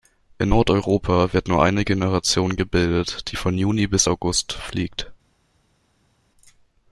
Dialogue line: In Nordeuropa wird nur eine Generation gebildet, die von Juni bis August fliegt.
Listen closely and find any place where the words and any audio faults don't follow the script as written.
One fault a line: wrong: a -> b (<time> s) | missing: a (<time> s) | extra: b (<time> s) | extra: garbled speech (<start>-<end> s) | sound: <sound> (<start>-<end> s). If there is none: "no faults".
no faults